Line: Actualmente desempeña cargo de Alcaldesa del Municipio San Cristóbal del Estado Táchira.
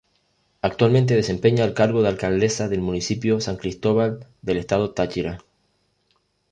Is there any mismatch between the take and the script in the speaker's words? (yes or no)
yes